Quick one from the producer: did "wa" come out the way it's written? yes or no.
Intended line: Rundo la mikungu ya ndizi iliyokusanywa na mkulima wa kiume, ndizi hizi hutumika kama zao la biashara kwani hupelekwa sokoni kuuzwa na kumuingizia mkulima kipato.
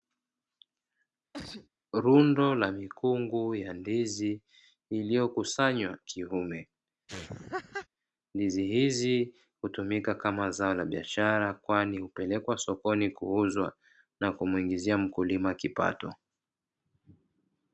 no